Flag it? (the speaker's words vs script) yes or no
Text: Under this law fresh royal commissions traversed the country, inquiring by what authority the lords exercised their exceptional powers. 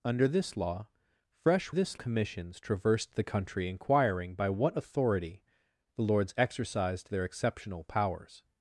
yes